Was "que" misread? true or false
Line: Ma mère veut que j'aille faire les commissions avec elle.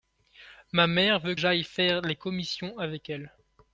true